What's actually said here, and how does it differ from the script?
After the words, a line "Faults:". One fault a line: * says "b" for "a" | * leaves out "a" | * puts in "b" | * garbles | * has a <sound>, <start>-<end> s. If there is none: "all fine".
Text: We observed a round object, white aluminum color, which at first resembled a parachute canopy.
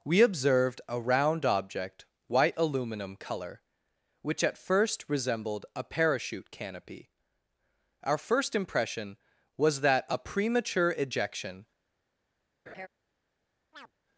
We observed a round object, white aluminum color, which at first resembled a parachute canopy. Our first impression was that a premature ejection
Faults:
* puts in "Our first impression was that a premature ejection"
* has a laugh, 12.7-12.9 s
* has a chirp, 13.7-13.9 s